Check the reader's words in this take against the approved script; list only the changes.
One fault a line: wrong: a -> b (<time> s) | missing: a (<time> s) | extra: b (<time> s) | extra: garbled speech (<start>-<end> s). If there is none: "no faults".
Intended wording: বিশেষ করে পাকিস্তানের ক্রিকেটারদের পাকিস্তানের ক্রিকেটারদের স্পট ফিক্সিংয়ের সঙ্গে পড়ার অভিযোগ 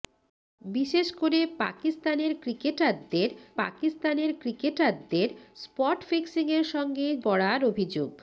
no faults